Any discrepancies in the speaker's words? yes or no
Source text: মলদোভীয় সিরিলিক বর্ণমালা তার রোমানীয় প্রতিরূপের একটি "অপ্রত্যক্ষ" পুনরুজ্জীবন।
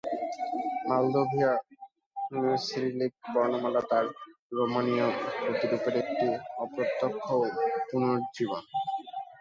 no